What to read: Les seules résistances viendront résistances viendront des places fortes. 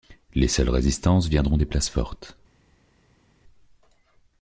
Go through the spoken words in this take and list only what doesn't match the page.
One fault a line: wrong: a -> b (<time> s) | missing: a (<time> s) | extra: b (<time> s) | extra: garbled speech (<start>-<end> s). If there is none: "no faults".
missing: résistances viendront (1.6 s)